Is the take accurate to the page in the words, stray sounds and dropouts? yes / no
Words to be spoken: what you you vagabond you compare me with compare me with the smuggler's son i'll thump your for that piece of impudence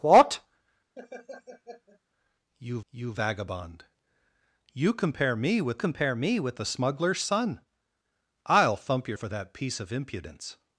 no